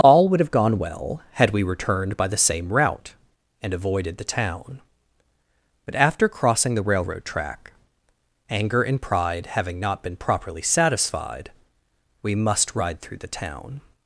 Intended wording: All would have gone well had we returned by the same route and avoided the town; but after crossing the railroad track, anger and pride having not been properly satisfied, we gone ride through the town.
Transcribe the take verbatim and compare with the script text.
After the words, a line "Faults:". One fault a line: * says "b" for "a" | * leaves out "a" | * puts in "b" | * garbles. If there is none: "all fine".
All would have gone well had we returned by the same route and avoided the town; but after crossing the railroad track, anger and pride having not been properly satisfied, we must ride through the town.
Faults:
* says "must" for "gone"